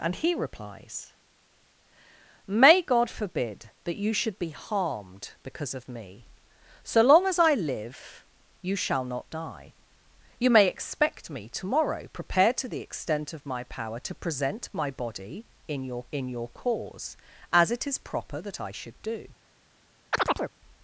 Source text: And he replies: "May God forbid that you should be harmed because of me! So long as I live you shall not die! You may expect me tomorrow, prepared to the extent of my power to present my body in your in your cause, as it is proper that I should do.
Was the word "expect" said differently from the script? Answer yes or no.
no